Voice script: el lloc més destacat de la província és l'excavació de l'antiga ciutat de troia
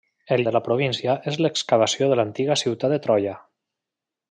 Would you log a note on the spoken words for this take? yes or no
yes